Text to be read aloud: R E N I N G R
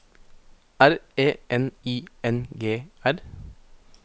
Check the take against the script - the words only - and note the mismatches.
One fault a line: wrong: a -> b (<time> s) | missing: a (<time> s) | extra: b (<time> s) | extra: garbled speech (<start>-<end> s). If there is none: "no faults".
no faults